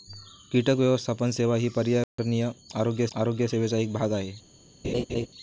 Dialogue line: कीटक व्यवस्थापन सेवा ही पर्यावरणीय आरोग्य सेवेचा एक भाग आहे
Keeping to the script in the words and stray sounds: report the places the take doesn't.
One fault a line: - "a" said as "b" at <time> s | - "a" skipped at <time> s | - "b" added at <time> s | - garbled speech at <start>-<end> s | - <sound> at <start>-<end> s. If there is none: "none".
- dropout at 2.0-2.2 s
- "आरोग्य" added at 3.2 s
- laugh at 4.8-5.3 s